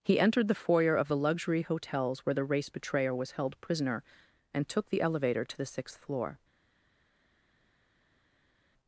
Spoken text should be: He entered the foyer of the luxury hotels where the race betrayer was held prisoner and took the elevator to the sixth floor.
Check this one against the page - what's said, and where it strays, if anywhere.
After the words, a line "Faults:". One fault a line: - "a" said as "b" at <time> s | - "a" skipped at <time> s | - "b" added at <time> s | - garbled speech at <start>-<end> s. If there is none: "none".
He entered the foyer of the luxury hotels where the race betrayer was held prisoner and took the elevator to the sixth floor.
Faults:
none